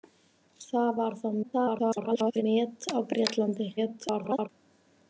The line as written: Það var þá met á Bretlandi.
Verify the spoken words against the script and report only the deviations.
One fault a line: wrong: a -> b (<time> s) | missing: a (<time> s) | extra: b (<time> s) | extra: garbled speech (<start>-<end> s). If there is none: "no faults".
extra: garbled speech (1.4-2.4 s)
extra: garbled speech (3.8-4.5 s)